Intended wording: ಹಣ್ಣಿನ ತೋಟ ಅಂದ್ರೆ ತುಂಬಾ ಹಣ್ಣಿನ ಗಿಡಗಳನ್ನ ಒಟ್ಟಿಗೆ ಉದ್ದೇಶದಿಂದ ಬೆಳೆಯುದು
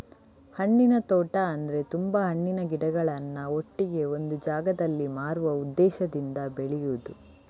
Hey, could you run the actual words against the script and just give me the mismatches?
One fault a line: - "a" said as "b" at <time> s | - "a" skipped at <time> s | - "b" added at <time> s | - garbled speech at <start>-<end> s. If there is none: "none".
- "ಒಂದು ಜಾಗದಲ್ಲಿ ಮಾರುವ" added at 4.2 s